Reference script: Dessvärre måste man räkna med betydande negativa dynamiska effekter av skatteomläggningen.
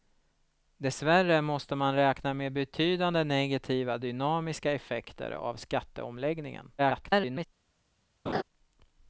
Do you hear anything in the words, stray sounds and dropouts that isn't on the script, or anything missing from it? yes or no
yes